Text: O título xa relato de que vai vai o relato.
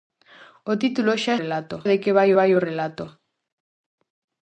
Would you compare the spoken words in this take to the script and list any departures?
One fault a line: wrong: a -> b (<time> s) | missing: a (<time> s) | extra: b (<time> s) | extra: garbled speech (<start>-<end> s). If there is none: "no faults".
no faults